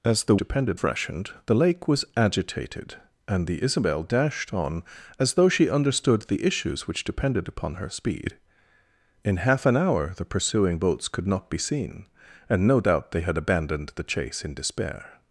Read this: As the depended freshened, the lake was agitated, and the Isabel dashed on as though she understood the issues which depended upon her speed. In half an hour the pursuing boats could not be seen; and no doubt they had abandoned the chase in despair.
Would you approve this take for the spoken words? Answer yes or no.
yes